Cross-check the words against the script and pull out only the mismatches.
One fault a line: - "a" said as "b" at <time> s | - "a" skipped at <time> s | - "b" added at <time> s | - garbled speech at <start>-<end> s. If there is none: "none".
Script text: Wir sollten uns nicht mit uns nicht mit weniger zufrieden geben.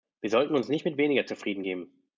- "uns nicht mit" skipped at 1.0 s